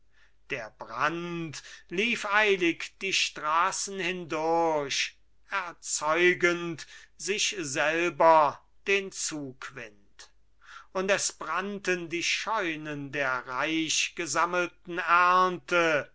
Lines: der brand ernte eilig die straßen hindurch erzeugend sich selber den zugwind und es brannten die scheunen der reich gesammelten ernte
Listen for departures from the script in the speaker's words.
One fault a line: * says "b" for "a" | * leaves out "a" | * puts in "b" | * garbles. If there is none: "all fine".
* says "lief" for "ernte"